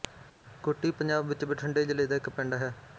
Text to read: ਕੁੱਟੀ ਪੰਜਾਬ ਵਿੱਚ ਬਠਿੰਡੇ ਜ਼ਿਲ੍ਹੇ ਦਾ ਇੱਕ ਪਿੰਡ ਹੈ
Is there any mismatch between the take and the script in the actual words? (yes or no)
no